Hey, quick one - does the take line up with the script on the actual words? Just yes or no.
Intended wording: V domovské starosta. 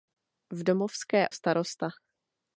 yes